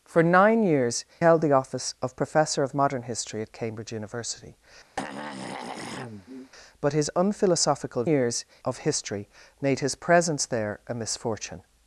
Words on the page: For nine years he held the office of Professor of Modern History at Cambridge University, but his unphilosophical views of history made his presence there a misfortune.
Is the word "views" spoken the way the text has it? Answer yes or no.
no